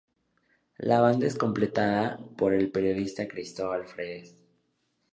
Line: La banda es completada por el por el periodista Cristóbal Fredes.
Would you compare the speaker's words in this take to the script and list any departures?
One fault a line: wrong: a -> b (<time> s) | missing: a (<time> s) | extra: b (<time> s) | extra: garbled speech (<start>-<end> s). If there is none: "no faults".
missing: por el (2.7 s)